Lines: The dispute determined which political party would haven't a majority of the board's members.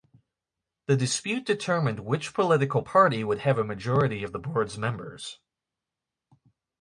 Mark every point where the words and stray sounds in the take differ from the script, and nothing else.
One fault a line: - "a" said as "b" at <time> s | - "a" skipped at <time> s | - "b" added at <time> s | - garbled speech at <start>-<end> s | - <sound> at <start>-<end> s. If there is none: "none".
- "haven't" said as "have" at 3.4 s